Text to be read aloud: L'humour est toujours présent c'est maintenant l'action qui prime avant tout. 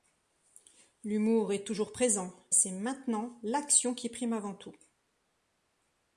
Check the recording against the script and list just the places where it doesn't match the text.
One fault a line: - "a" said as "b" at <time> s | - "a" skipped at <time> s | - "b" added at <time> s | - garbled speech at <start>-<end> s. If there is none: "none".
none